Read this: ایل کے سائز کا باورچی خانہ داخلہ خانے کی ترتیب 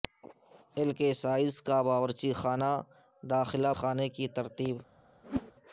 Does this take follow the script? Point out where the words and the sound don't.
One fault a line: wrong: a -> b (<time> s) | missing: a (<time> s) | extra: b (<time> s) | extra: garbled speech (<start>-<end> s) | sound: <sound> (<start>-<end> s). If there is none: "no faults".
sound: whoosh (5.2-5.5 s)